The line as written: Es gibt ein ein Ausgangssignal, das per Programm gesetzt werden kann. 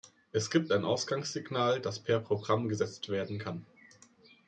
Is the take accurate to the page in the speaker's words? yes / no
no